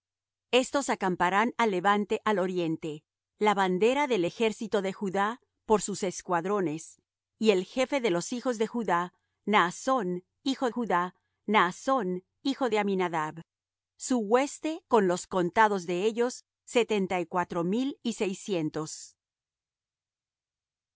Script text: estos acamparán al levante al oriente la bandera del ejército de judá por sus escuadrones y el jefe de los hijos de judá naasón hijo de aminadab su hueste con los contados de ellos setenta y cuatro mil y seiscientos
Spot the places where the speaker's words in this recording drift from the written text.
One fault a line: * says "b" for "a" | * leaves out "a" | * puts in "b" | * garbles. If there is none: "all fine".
* puts in "judá naasón hijo"